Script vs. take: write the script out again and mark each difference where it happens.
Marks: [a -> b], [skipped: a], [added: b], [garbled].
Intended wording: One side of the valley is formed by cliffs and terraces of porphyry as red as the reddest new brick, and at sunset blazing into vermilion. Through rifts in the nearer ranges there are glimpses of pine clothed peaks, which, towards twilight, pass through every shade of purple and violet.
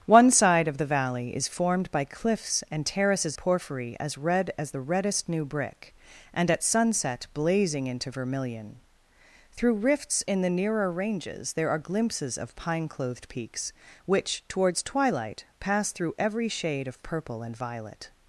One side of the valley is formed by cliffs and terraces [skipped: of] porphyry as red as the reddest new brick, and at sunset blazing into vermilion. Through rifts in the nearer ranges there are glimpses of pine clothed peaks, which, towards twilight, pass through every shade of purple and violet.